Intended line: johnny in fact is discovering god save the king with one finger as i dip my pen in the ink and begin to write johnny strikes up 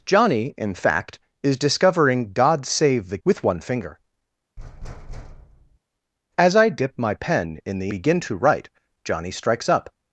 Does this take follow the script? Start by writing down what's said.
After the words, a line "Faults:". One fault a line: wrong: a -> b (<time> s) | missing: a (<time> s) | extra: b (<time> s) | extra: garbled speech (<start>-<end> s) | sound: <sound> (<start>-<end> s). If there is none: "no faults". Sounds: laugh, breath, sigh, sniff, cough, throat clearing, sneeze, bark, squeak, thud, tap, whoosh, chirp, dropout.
johnny in fact is discovering god save the with one finger as i dip my pen in the begin to write johnny strikes up
Faults:
missing: king (3.2 s)
sound: thud (4.6-5.8 s)
missing: ink and (7.9 s)